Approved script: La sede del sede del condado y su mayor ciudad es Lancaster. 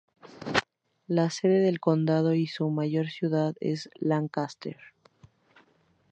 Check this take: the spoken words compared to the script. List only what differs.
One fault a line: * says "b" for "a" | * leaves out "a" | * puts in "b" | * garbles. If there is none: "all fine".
* leaves out "sede del"